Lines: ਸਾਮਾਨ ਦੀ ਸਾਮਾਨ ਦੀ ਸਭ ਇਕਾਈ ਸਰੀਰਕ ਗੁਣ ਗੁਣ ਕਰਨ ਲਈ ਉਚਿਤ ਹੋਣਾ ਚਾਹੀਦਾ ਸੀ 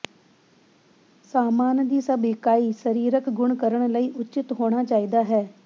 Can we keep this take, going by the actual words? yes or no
no